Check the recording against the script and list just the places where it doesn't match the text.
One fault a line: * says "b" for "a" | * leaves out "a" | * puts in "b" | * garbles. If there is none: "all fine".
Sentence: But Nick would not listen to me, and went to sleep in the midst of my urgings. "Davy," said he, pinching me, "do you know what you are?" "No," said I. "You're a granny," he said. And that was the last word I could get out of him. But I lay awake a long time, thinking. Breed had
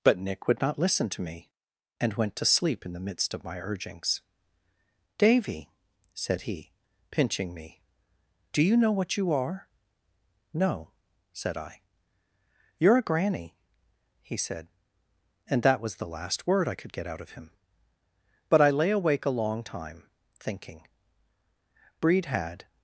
all fine